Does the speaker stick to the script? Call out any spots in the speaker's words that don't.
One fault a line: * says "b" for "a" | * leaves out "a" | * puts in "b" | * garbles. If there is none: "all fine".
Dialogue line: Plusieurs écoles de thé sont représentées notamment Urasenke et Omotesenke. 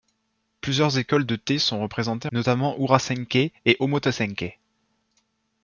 all fine